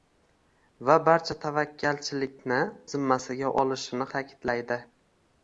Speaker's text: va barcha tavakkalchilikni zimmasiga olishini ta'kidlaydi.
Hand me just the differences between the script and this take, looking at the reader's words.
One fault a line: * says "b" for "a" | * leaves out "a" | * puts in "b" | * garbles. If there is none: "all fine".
all fine